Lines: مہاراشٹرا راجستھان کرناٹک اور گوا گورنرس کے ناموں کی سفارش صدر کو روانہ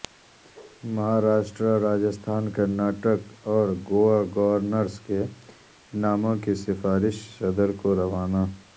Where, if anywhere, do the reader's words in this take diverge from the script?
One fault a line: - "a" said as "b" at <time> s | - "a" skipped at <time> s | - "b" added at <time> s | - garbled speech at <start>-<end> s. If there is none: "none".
none